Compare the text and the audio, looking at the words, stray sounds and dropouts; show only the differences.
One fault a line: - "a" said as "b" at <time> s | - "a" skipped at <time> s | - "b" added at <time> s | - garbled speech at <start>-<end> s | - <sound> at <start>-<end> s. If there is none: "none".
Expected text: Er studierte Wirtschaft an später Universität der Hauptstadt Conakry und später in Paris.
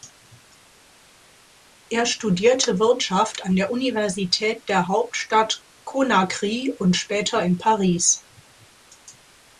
- "später" said as "der" at 3.6 s